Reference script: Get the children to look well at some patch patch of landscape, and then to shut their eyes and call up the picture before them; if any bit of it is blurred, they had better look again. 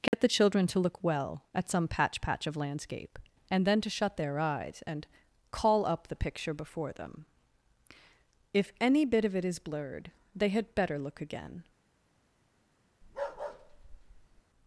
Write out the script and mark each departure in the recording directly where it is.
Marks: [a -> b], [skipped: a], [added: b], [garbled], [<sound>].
Get [dropout] the children to look well at some patch patch of landscape, and then to shut their eyes and call up the picture before them; if any bit of it is blurred, they had better look again. [bark]